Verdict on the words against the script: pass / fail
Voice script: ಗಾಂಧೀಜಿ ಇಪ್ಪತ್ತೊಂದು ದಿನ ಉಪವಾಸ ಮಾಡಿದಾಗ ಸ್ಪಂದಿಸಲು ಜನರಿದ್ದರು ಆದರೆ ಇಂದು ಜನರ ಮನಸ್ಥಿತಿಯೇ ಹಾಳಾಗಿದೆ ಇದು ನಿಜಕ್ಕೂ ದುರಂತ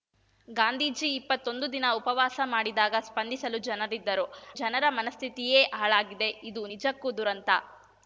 fail